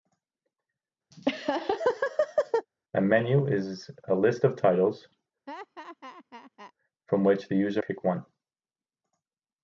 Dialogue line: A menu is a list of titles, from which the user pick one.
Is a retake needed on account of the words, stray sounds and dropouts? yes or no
yes